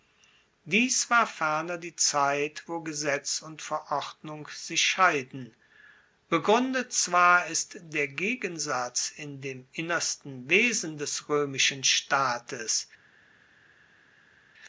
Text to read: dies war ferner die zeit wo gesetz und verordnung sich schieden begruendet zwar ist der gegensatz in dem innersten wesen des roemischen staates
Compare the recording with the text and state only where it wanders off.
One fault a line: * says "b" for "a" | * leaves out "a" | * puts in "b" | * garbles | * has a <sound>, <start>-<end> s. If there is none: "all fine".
all fine